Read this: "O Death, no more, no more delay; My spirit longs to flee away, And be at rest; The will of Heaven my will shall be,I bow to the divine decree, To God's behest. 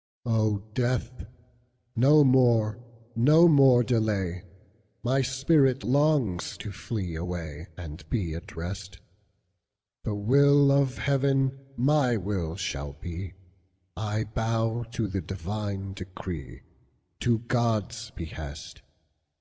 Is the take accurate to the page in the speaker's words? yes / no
yes